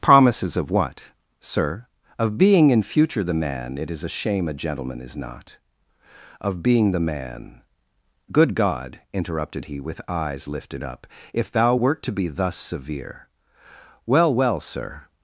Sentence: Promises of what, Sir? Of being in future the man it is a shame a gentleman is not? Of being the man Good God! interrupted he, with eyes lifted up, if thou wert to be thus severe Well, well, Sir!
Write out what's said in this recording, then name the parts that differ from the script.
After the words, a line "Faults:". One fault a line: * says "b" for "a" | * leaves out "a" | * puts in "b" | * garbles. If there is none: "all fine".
Promises of what, Sir? Of being in future the man it is a shame a gentleman is not? Of being the man Good God! interrupted he, with eyes lifted up, if thou wert to be thus severe Well, well, Sir!
Faults:
all fine